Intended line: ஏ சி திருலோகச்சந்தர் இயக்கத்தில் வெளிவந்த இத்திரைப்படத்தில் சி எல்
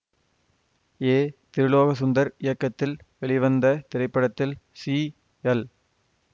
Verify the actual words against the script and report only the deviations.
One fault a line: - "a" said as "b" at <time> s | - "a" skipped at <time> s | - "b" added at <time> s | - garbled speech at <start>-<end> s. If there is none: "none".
- "சி" skipped at 1.2 s